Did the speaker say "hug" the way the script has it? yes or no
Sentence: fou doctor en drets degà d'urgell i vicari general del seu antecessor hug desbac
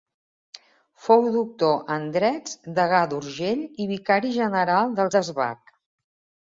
no